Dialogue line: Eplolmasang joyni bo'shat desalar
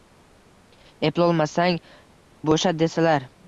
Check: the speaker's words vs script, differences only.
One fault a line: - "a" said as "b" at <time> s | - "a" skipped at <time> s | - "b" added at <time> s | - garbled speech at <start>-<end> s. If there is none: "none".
- "joyni" skipped at 1.8 s